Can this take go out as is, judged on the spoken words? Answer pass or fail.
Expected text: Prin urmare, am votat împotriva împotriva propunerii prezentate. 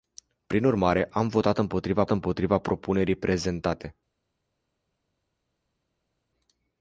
pass